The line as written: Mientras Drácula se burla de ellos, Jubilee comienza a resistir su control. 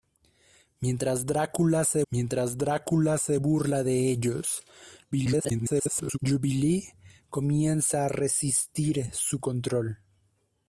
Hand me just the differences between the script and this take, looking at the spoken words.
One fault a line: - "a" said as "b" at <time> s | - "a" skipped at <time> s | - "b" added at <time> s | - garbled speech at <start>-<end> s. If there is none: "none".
- "mientras Drácula se" added at 2.1 s
- garbled speech at 5.1-6.2 s